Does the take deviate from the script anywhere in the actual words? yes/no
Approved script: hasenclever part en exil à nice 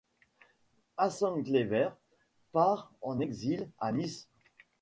no